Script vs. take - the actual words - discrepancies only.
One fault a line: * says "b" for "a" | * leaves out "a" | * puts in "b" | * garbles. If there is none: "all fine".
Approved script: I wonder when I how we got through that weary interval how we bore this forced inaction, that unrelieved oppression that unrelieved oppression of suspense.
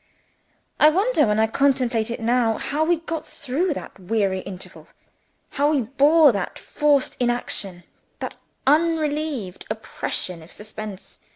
* puts in "contemplate it now"
* says "that" for "this"
* leaves out "that unrelieved oppression"